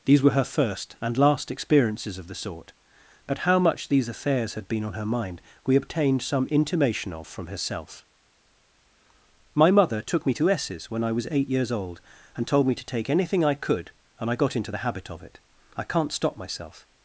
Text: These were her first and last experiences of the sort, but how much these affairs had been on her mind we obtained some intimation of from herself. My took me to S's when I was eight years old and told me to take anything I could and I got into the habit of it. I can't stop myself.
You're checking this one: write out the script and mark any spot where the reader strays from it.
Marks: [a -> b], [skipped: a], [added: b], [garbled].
These were her first and last experiences of the sort, but how much these affairs had been on her mind we obtained some intimation of from herself. My [added: mother] took me to S's when I was eight years old and told me to take anything I could and I got into the habit of it. I can't stop myself.